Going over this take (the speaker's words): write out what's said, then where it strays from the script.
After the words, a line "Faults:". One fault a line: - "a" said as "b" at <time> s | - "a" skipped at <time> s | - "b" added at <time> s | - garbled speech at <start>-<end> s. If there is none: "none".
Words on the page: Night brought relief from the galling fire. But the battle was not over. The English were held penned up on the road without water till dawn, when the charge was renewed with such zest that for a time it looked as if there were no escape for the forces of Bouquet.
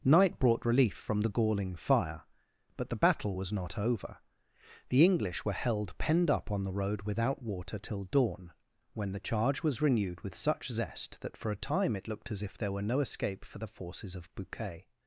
Night brought relief from the galling fire. But the battle was not over. The English were held penned up on the road without water till dawn, when the charge was renewed with such zest that for a time it looked as if there were no escape for the forces of Bouquet.
Faults:
none